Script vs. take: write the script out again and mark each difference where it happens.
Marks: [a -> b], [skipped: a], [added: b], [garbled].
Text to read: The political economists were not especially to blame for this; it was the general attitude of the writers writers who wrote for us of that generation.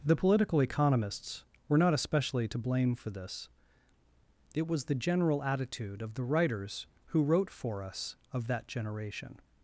The political economists were not especially to blame for this; it was the general attitude of the writers [skipped: writers] who wrote for us of that generation.